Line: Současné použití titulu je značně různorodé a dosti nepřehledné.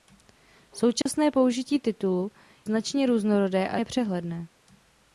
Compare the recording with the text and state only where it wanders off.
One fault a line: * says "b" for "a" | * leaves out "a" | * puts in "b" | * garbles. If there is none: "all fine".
* leaves out "je"
* leaves out "dosti"